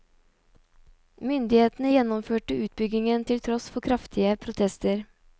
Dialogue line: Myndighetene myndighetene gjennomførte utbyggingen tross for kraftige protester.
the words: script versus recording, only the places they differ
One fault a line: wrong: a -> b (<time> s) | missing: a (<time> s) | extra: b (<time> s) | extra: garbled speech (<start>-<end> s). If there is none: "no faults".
missing: myndighetene (1.9 s)
extra: til (3.3 s)